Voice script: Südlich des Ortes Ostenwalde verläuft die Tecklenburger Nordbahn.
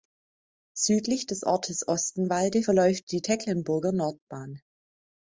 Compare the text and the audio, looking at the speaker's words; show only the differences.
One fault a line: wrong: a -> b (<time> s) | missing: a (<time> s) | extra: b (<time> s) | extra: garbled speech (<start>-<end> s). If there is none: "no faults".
no faults